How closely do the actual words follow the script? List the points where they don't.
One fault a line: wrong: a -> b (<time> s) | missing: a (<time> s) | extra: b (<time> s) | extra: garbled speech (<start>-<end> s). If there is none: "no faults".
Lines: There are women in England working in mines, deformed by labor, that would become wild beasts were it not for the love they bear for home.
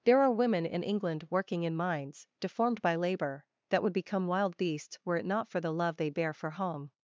no faults